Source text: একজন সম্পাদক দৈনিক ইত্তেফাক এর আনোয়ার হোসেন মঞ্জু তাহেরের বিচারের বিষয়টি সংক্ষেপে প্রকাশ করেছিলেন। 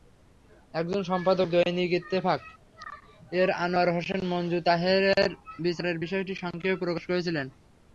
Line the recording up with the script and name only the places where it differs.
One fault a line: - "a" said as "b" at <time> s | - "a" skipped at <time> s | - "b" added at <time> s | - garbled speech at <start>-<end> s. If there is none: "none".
none